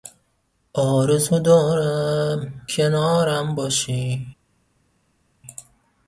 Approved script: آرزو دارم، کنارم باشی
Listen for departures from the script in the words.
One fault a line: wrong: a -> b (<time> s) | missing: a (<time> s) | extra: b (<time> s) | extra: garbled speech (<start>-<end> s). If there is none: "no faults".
no faults